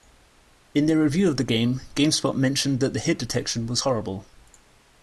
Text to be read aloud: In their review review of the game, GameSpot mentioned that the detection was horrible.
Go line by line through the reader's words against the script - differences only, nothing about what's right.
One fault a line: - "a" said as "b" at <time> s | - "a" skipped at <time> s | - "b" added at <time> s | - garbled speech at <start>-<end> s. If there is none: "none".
- "review" skipped at 1.3 s
- "hit" added at 3.0 s